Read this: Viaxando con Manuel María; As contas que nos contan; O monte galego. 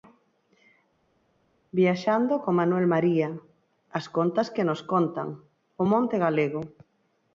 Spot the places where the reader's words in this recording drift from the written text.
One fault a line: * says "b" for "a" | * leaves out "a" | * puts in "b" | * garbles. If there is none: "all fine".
all fine